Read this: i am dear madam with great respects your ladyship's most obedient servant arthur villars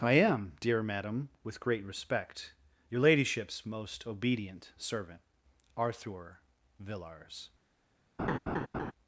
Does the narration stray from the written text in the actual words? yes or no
yes